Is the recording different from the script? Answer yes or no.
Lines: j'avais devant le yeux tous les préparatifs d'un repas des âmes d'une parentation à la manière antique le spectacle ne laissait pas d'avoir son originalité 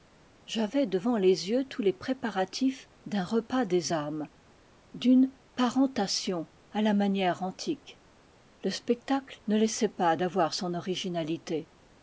yes